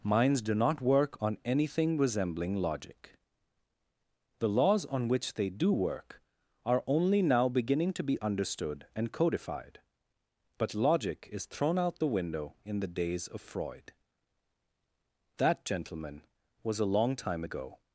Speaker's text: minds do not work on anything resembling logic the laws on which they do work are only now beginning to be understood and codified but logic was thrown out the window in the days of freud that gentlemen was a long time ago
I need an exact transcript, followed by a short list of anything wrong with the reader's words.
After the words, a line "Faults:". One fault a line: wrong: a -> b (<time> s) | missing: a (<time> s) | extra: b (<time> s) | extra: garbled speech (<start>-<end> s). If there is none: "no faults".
minds do not work on anything resembling logic the laws on which they do work are only now beginning to be understood and codified but logic is thrown out the window in the days of freud that gentlemen was a long time ago
Faults:
wrong: was -> is (11.3 s)